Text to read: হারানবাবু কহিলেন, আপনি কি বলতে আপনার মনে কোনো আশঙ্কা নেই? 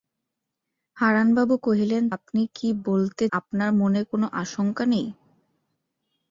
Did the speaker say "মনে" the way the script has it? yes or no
yes